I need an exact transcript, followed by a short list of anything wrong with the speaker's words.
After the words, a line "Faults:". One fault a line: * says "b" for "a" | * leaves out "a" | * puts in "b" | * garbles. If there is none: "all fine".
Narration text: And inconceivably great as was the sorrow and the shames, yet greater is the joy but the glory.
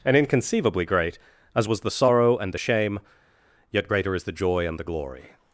And inconceivably great as was the sorrow and the shame, yet greater is the joy and the glory.
Faults:
* says "shame" for "shames"
* says "and" for "but"